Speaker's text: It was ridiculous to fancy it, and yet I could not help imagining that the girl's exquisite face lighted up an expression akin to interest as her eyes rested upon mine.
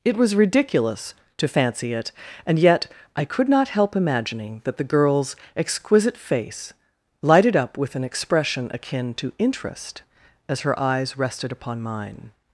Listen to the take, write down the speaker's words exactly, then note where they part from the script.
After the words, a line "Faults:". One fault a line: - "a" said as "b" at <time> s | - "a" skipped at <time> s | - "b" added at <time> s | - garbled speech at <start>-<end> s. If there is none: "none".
It was ridiculous to fancy it, and yet I could not help imagining that the girl's exquisite face lighted up with an expression akin to interest as her eyes rested upon mine.
Faults:
- "with" added at 7.8 s